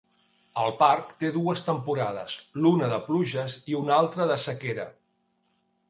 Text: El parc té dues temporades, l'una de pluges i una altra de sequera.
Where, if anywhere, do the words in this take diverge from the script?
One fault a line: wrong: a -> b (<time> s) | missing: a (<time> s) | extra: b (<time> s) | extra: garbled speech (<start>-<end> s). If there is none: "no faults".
no faults